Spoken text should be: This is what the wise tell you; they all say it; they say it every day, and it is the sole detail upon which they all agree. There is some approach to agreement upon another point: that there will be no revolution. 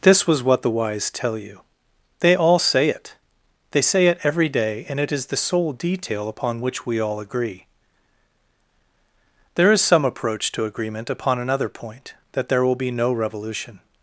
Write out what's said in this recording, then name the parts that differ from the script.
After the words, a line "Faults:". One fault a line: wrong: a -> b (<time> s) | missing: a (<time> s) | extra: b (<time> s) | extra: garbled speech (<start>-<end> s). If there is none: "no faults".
This was what the wise tell you; they all say it; they say it every day, and it is the sole detail upon which we all agree. There is some approach to agreement upon another point: that there will be no revolution.
Faults:
wrong: is -> was (0.2 s)
wrong: they -> we (6.9 s)